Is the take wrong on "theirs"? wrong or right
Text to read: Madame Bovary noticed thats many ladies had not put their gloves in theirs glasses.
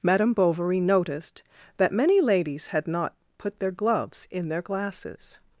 wrong